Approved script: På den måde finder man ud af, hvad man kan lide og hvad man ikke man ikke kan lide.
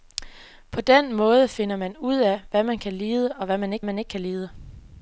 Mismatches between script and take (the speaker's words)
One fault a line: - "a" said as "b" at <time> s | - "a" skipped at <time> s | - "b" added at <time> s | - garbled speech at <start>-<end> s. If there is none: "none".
none